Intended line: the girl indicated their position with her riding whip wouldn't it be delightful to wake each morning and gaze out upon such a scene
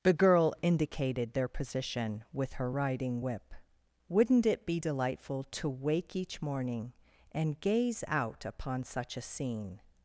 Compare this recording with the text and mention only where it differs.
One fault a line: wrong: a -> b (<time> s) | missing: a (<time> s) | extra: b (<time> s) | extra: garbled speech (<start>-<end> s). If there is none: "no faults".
no faults